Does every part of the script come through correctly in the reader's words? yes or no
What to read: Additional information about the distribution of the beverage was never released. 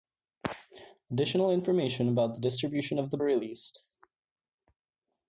no